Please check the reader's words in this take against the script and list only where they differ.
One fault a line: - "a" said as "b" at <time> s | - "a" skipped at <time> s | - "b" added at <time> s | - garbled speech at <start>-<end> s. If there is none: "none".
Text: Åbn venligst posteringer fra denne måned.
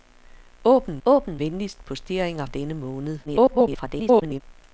- "åbn" added at 1.0 s
- "fra" skipped at 2.4 s
- garbled speech at 3.2-4.4 s